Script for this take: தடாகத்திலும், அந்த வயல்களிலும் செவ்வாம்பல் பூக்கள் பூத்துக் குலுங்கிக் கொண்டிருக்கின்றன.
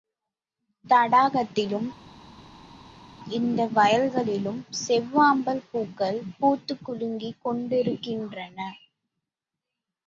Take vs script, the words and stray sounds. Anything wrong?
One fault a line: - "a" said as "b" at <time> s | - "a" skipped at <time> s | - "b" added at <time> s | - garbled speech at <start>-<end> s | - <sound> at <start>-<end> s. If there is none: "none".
- "அந்த" said as "இந்த" at 3.3 s